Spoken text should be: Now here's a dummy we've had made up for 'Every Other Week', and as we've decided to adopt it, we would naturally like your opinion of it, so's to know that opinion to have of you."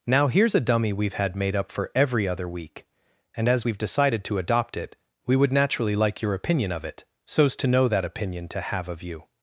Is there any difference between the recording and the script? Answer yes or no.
no